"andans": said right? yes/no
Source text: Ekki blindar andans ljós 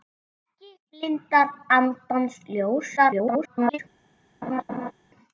yes